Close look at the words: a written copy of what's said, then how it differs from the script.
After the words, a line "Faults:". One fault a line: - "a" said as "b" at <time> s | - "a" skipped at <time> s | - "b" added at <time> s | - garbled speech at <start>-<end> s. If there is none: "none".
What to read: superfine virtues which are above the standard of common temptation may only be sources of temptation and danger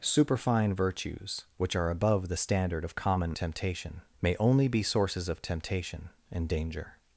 superfine virtues which are above the standard of common temptation may only be sources of temptation and danger
Faults:
none